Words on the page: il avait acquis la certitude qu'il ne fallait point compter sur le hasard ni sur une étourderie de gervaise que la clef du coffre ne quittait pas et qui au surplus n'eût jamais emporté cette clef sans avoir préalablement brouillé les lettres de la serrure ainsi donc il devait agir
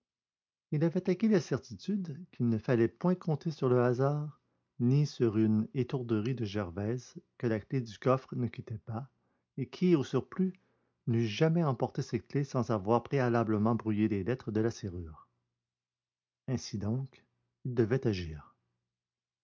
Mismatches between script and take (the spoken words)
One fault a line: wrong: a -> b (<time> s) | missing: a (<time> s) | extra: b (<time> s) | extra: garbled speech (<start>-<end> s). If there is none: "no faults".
no faults